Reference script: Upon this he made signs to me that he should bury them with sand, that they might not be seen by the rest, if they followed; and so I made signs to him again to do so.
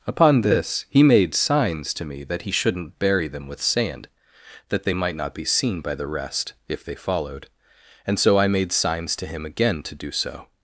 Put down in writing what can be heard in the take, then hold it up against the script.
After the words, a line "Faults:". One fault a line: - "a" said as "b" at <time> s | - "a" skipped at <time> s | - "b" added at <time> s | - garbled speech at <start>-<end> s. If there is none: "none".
Upon this he made signs to me that he shouldn't bury them with sand, that they might not be seen by the rest, if they followed; and so I made signs to him again to do so.
Faults:
- "should" said as "shouldn't" at 2.5 s